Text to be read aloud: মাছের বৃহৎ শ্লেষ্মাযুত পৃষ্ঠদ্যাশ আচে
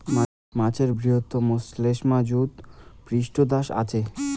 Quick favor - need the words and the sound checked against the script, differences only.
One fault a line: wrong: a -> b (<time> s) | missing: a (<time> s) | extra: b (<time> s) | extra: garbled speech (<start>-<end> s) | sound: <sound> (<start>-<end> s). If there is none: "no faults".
no faults